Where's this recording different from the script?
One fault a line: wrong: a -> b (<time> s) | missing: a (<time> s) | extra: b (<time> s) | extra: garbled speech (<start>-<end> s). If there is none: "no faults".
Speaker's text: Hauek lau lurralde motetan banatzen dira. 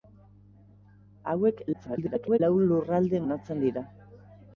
extra: garbled speech (1.7-2.4 s)
missing: motetan (3.2 s)